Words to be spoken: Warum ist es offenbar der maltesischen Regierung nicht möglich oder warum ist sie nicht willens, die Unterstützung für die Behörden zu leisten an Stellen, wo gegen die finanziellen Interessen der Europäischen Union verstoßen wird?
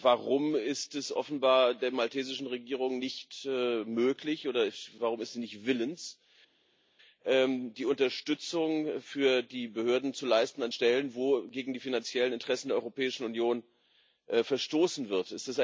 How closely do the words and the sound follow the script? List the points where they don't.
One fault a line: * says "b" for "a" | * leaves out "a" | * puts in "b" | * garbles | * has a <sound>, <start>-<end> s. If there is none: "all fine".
all fine